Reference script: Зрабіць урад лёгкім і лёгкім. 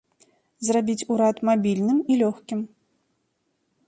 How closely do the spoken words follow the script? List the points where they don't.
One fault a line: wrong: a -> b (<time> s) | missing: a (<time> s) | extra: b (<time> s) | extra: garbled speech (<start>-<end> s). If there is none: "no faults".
wrong: лёгкім -> мабільным (1.5 s)